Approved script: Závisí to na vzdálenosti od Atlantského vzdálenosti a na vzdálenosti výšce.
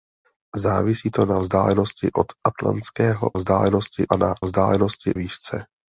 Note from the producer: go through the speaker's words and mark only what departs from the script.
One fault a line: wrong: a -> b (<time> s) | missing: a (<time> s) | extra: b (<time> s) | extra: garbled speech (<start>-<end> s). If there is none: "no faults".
no faults